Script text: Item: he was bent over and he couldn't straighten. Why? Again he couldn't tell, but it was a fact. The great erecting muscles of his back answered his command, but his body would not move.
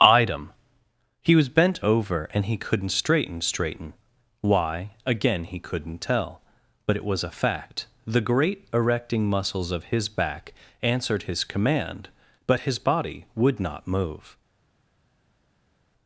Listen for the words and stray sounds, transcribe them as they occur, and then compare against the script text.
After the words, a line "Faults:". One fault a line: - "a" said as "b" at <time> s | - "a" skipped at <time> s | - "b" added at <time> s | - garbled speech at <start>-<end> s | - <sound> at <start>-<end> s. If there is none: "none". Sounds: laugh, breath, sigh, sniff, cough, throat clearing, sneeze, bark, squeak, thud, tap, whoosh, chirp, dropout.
Item: he was bent over and he couldn't straighten straighten. Why? Again he couldn't tell, but it was a fact. The great erecting muscles of his back answered his command, but his body would not move.
Faults:
- "straighten" added at 3.4 s